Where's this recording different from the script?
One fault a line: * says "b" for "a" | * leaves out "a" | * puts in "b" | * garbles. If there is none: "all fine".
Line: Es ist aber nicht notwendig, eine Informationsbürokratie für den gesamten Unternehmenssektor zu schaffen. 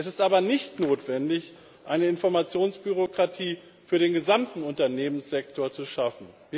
all fine